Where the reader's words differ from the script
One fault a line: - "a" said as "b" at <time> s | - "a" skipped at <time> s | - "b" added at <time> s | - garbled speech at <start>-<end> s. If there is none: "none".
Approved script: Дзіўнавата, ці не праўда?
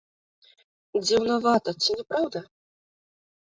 none